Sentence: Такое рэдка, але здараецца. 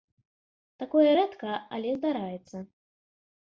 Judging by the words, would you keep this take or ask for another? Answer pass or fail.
pass